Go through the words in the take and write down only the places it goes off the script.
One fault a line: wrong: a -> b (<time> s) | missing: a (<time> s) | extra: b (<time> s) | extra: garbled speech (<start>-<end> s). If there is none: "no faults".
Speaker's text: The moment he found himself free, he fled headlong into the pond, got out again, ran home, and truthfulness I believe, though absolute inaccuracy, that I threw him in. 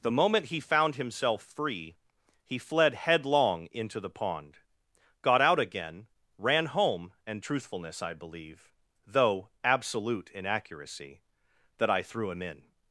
no faults